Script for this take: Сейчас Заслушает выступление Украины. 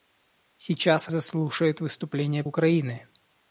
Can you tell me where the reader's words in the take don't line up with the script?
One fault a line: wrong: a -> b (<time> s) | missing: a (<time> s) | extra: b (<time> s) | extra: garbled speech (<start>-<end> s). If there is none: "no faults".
no faults